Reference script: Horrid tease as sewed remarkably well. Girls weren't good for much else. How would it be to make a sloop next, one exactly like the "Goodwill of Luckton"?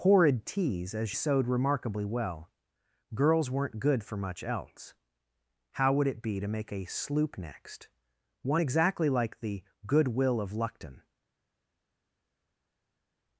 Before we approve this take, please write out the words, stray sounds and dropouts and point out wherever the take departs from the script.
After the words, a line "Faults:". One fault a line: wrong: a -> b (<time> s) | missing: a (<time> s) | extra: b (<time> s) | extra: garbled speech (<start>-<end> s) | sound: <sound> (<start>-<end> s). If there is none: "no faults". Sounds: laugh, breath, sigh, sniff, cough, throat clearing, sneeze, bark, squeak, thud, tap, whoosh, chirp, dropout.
Horrid tease as sewed remarkably well. Girls weren't good for much else. How would it be to make a sloop next, one exactly like the "Goodwill of Luckton"?
Faults:
no faults